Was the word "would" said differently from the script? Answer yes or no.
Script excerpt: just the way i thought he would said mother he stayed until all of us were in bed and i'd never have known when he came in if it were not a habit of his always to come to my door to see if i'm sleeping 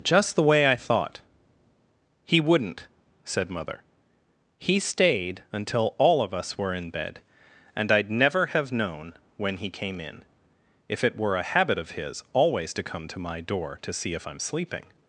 yes